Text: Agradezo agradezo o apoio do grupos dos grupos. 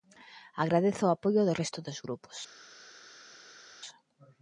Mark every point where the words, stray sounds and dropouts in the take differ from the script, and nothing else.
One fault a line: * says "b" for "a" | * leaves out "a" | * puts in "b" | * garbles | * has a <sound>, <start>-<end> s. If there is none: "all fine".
* leaves out "agradezo"
* says "resto" for "grupos"